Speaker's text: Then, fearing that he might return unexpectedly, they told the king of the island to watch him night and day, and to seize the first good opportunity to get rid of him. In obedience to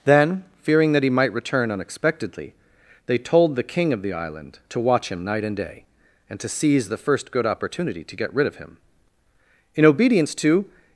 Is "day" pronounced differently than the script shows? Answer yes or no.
no